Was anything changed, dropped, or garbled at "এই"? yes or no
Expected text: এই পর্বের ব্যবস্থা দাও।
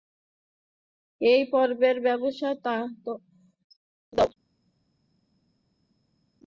no